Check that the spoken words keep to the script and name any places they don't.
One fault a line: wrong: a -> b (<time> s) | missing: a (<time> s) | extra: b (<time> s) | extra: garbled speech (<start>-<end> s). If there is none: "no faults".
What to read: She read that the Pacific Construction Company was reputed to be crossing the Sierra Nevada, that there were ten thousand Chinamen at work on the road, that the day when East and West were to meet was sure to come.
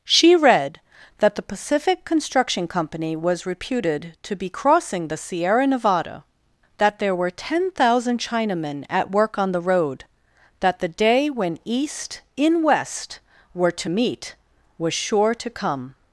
wrong: and -> in (12.3 s)